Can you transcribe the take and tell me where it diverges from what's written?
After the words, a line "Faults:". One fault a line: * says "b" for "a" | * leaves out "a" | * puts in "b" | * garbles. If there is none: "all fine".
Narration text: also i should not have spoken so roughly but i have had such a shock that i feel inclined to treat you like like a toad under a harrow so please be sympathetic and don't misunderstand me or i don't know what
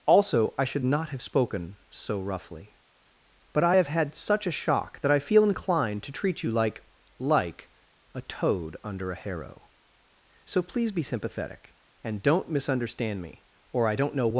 also i should not have spoken so roughly but i have had such a shock that i feel inclined to treat you like like a toad under a harrow so please be sympathetic and don't misunderstand me or i don't know what
Faults:
all fine